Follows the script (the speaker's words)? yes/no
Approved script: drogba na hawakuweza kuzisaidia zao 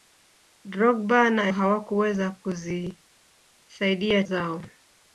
yes